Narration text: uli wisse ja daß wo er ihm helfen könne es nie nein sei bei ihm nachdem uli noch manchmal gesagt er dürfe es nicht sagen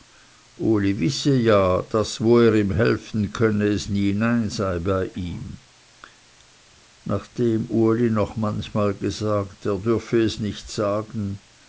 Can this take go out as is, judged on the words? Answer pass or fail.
pass